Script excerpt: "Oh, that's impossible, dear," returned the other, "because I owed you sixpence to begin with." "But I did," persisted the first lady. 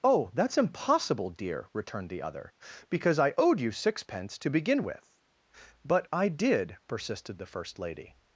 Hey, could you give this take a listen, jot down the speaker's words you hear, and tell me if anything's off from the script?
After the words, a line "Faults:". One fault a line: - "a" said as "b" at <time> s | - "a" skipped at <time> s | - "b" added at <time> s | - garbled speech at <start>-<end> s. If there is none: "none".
"Oh, that's impossible, dear," returned the other, "because I owed you sixpence to begin with." "But I did," persisted the first lady.
Faults:
none